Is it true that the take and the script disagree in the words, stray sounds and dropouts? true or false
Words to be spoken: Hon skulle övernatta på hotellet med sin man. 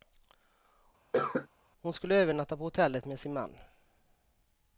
true